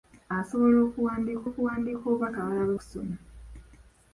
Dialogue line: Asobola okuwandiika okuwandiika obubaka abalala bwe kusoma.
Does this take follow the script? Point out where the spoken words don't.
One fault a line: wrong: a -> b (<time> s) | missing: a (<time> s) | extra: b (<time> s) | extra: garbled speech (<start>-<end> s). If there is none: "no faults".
no faults